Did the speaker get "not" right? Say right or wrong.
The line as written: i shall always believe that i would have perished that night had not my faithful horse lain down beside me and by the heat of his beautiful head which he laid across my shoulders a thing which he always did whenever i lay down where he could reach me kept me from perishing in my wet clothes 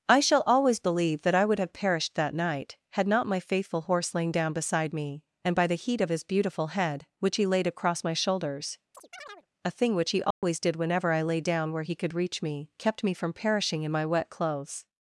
right